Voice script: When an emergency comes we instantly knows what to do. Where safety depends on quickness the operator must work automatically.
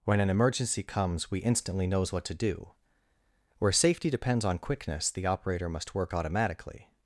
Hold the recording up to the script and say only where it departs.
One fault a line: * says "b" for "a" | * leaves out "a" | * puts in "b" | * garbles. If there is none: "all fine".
all fine